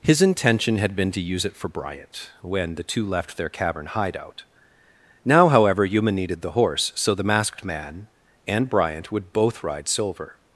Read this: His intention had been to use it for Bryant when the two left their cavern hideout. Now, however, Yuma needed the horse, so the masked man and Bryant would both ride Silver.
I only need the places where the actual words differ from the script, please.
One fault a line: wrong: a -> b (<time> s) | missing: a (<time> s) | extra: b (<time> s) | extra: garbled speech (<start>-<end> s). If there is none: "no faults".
no faults